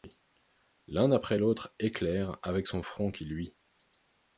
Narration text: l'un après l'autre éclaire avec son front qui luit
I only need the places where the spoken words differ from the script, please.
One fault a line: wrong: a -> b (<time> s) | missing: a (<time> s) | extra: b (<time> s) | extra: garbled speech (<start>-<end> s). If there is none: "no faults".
no faults